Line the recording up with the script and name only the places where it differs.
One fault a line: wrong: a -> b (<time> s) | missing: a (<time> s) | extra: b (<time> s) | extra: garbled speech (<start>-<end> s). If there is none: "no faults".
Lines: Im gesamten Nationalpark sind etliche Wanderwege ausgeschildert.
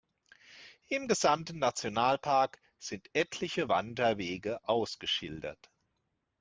no faults